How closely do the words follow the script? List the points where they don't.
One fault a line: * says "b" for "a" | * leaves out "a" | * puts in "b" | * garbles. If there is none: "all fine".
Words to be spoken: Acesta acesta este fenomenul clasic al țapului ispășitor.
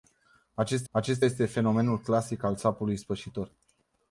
all fine